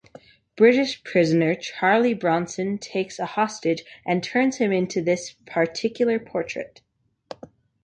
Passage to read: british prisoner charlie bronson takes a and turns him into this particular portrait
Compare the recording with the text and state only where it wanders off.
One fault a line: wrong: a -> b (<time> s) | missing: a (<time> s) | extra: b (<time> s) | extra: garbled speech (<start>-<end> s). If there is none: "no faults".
extra: hostage (3.3 s)